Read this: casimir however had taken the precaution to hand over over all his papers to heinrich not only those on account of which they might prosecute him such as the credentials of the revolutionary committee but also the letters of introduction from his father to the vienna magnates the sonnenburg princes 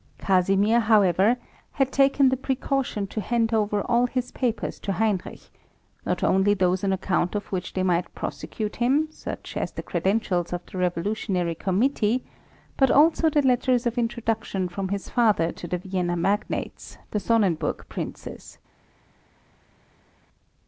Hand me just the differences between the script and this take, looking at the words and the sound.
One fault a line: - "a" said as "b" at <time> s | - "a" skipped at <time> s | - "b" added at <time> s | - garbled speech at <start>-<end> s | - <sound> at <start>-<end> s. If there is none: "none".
- "over" skipped at 3.8 s